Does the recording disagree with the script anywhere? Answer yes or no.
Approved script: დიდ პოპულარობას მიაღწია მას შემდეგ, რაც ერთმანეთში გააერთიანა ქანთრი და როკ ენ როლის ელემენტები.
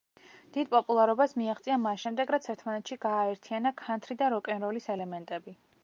no